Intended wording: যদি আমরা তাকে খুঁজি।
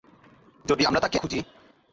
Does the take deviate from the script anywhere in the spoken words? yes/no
no